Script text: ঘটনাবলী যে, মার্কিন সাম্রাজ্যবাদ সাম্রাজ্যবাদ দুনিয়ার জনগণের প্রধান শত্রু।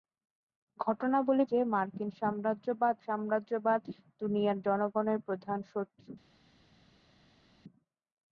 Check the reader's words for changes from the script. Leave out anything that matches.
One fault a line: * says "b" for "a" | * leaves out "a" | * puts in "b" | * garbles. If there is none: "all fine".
all fine